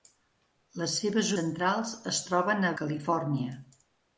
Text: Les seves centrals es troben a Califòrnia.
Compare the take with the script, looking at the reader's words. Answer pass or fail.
pass